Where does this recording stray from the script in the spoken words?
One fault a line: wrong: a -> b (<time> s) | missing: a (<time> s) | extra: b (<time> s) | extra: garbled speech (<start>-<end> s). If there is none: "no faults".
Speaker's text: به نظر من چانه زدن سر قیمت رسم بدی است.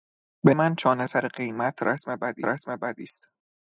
missing: نظر (0.5 s)
missing: زدن (1.1 s)
extra: رسم بدی (2.4 s)